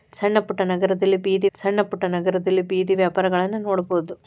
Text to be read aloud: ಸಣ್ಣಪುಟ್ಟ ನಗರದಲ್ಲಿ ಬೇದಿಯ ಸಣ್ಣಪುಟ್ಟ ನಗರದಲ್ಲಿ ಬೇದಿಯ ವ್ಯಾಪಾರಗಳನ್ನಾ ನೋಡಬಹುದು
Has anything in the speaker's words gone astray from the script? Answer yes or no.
no